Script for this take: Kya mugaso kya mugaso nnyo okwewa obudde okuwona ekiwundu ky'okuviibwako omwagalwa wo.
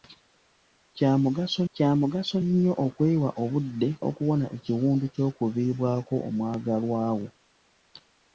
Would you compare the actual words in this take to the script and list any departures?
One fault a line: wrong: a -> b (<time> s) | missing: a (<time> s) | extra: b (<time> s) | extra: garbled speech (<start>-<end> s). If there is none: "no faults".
no faults